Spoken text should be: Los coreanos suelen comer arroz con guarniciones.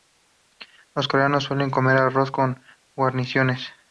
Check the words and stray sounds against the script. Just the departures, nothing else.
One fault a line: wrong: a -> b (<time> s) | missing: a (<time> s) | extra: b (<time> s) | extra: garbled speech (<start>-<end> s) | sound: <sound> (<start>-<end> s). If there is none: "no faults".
no faults